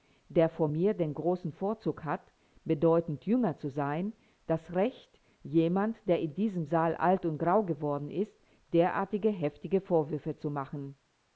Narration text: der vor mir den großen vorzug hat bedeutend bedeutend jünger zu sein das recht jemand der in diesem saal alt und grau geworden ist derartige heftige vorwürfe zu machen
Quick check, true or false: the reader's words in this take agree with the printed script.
false